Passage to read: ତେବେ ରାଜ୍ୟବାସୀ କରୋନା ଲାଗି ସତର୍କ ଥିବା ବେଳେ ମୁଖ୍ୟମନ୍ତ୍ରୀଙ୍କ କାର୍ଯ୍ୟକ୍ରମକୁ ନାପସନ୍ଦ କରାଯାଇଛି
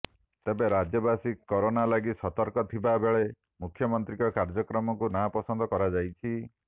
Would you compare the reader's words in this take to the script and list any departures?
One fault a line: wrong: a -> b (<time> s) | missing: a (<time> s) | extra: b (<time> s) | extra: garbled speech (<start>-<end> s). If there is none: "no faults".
no faults